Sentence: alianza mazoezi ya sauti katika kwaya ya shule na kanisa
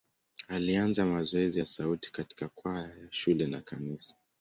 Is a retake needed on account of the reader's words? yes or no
no